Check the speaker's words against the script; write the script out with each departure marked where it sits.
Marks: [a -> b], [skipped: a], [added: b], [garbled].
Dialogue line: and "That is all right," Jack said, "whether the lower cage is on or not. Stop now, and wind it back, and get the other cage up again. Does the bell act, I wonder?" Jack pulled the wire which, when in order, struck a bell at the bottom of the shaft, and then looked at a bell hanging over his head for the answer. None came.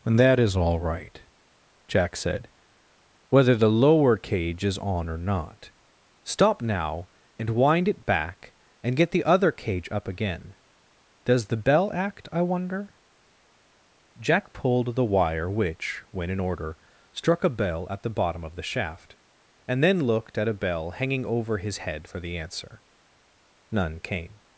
and "That is all right," Jack said, "whether the lower cage is on or not. Stop now, and wind it back, and get the other cage up again. Does the bell act, I wonder?" Jack pulled the wire which, when in order, struck a bell at the bottom of the shaft, and then looked at a bell hanging over his head for the answer. None came.